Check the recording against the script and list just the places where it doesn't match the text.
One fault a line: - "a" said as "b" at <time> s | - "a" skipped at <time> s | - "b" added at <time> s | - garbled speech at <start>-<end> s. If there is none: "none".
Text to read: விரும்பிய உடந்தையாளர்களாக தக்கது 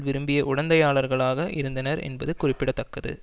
- "இருந்தனர் என்பது குறிப்பிட" added at 1.5 s